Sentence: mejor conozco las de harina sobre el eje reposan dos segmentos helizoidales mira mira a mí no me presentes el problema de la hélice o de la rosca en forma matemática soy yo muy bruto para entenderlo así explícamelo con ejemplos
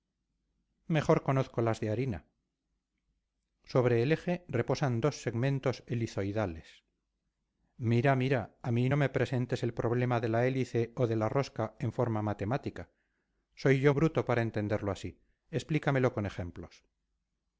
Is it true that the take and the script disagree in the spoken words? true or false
true